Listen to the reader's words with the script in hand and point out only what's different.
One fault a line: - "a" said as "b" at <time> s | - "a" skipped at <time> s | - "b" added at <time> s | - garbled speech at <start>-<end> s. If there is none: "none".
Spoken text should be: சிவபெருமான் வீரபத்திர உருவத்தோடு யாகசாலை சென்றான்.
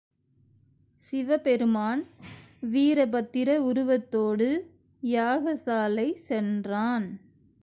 none